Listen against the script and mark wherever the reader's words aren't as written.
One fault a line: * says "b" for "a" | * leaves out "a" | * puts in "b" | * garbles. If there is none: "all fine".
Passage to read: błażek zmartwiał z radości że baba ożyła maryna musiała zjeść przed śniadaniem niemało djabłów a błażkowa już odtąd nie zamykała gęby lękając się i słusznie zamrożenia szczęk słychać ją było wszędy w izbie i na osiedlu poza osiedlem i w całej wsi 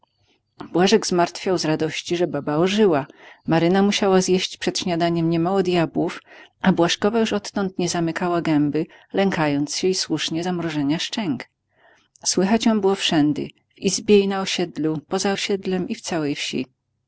all fine